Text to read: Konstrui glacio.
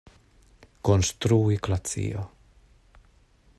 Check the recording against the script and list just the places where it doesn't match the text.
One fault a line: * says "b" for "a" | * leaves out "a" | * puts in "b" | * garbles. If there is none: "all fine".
all fine